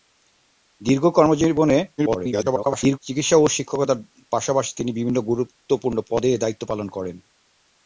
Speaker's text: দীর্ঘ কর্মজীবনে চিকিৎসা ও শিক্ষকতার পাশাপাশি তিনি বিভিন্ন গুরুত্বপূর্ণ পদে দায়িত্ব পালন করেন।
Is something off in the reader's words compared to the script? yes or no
yes